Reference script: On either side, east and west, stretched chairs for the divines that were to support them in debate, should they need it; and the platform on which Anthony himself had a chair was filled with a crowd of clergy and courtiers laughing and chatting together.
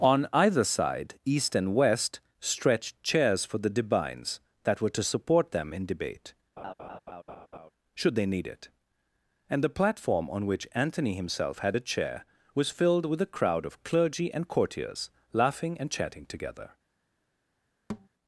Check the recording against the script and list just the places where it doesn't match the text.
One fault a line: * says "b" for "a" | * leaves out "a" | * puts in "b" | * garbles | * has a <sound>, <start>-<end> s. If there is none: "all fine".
* has a laugh, 6.6-7.7 s
* has a thud, 17.9-18.1 s